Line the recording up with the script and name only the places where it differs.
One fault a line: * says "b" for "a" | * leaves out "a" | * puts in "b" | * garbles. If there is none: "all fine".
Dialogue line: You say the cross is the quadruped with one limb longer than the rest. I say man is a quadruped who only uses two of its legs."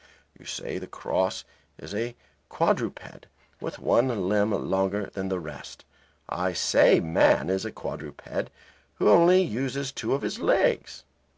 * says "a" for "the"
* says "his" for "its"